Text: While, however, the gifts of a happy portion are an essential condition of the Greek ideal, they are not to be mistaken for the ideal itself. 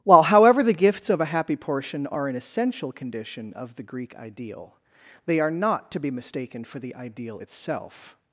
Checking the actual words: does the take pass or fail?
pass